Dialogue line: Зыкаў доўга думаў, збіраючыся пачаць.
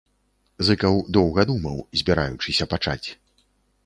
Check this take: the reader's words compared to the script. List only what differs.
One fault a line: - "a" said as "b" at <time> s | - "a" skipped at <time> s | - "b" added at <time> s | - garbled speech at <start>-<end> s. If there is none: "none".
none